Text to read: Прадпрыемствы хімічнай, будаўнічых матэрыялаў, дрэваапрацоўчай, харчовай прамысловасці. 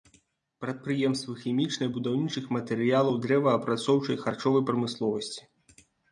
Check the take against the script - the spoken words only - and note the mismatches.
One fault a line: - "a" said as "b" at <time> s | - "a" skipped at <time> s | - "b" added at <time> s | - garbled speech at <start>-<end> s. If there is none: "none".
none